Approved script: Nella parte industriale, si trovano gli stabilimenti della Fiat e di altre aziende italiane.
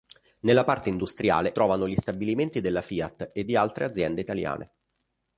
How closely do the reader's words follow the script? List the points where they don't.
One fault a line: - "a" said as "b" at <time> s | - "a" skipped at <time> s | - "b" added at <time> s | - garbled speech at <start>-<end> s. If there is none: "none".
- "si" skipped at 1.5 s